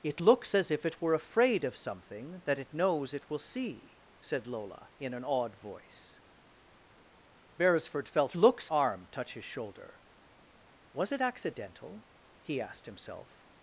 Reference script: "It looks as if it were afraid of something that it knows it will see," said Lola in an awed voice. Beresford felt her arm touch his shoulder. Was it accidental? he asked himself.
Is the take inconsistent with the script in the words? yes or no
yes